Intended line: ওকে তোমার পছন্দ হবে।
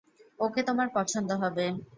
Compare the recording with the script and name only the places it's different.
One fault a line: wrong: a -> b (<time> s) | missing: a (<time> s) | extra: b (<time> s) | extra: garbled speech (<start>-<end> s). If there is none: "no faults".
no faults